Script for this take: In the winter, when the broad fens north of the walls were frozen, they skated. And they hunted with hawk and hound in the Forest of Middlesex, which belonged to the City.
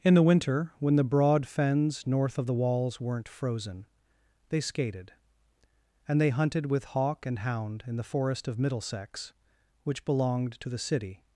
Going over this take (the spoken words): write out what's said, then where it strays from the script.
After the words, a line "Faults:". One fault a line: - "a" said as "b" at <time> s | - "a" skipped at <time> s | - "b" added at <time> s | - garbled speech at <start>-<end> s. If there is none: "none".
In the winter, when the broad fens north of the walls weren't frozen, they skated. And they hunted with hawk and hound in the Forest of Middlesex, which belonged to the City.
Faults:
- "were" said as "weren't" at 3.0 s